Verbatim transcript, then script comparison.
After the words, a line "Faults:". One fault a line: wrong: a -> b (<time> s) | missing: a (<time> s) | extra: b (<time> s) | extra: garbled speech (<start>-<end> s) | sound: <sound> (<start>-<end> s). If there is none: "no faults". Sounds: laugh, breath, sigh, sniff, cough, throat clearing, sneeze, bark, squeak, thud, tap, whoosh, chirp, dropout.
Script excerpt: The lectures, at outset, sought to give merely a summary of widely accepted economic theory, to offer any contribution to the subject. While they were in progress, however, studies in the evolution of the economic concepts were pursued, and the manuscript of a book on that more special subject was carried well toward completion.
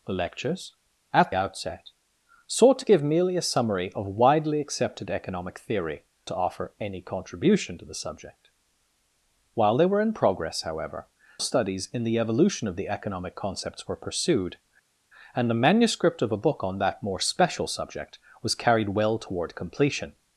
The lectures, at outset, sought to give merely a summary of widely accepted economic theory, to offer any contribution to the subject. While they were in progress, however, studies in the evolution of the economic concepts were pursued, and the manuscript of a book on that more special subject was carried well toward completion.
Faults:
no faults